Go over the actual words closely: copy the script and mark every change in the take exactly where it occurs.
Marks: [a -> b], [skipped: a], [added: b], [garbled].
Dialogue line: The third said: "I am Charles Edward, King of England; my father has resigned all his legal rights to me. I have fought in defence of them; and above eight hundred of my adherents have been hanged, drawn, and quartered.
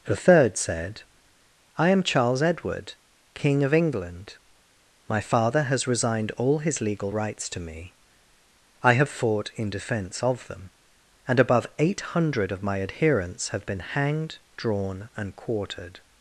The third said: "I am Charles Edward, King of England; my father has resigned all his legal rights to me. I have fought in defence of them; and above eight hundred of my adherents have been hanged, drawn, and quartered.